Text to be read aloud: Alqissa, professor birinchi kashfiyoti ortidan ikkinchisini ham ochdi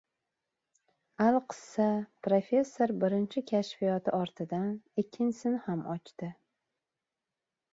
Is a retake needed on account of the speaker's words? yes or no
no